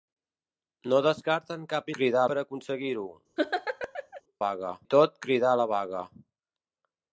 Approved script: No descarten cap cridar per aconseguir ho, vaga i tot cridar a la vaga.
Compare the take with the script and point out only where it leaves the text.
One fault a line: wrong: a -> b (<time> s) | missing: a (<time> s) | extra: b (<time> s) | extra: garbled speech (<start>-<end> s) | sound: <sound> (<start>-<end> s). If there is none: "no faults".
sound: laugh (3.4-4.2 s)